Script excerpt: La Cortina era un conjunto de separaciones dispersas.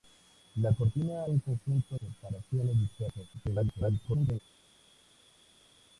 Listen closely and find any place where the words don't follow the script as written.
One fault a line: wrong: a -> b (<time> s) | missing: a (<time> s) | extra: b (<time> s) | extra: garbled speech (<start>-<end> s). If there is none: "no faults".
missing: era (1.3 s)
missing: de (2.0 s)
extra: garbled speech (3.3-4.4 s)